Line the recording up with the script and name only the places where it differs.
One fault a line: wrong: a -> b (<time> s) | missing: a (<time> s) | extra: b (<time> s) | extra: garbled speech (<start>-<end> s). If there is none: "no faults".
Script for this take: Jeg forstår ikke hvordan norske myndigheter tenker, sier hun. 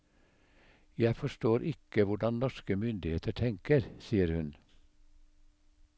no faults